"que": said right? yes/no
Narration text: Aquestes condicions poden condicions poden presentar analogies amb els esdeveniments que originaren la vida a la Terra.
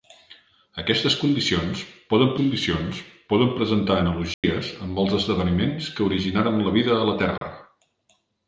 yes